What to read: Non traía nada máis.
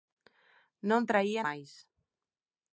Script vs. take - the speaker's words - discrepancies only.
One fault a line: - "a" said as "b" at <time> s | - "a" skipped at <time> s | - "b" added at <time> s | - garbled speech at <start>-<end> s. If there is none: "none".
- "nada" skipped at 1.4 s